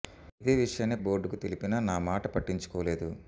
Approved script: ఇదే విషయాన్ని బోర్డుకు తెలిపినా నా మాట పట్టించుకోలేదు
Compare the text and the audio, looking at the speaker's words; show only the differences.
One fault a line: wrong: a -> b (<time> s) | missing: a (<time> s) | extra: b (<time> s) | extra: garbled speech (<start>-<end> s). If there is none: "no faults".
no faults